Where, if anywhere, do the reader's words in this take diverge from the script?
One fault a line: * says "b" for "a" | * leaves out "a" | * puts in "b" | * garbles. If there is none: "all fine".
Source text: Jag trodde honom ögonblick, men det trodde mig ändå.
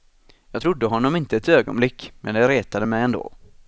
* puts in "inte ett"
* says "retade" for "trodde"